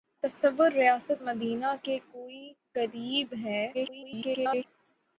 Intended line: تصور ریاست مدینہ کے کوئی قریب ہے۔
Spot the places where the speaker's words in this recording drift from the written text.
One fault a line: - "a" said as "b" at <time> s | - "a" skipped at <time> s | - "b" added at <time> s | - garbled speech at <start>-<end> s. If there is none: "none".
- garbled speech at 3.7-4.6 s